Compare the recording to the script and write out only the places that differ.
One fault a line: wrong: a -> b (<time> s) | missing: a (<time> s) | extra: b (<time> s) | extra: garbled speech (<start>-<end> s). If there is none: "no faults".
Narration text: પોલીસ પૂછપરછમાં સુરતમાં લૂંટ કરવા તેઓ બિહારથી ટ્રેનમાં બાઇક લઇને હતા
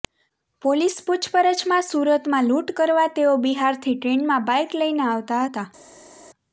extra: આવતા (5.1 s)